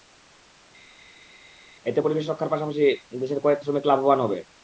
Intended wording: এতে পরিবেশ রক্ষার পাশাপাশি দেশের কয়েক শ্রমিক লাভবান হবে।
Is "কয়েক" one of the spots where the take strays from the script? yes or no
no